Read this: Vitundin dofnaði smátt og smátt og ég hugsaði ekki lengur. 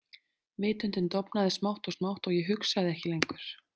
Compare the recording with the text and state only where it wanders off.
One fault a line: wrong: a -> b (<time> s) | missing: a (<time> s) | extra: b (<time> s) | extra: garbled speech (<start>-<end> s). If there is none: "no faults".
no faults